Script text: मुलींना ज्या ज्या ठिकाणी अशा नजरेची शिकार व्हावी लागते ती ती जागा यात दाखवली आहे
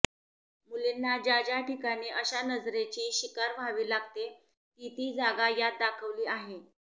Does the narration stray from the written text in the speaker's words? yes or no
no